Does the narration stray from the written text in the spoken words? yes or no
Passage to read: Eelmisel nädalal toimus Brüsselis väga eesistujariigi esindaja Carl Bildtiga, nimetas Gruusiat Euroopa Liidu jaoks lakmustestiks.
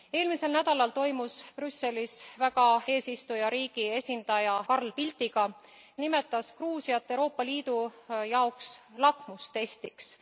no